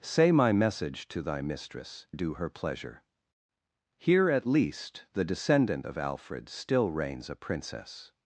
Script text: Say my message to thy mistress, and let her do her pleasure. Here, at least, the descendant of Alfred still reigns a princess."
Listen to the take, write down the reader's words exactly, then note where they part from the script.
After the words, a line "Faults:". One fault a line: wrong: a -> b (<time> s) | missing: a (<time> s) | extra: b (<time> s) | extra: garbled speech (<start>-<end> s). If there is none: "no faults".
Say my message to thy mistress, do her pleasure. Here, at least, the descendant of Alfred still reigns a princess."
Faults:
missing: and let her (2.1 s)